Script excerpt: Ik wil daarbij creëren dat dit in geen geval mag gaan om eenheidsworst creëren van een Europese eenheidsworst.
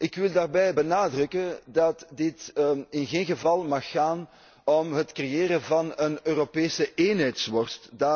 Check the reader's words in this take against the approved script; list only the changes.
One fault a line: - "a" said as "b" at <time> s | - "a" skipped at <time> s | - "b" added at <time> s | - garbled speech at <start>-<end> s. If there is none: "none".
- "creëren" said as "benadrukken" at 0.7 s
- "eenheidsworst" said as "het" at 4.9 s